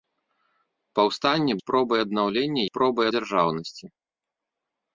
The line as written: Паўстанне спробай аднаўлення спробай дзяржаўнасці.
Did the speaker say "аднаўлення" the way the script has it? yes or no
yes